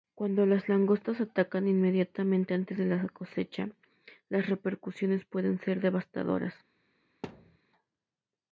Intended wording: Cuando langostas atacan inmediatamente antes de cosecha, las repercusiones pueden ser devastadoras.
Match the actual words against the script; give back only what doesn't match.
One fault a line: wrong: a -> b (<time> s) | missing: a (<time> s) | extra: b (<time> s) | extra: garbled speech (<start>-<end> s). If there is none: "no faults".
extra: las (0.5 s)
extra: la (2.9 s)